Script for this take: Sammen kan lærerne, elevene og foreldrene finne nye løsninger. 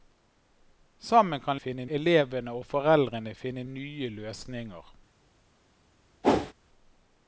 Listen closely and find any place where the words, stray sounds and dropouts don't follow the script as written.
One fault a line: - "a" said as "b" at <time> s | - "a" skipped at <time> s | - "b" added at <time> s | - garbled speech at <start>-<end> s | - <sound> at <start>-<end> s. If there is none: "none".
- "lærerne" said as "finne" at 1.6 s
- whoosh at 6.2-6.5 s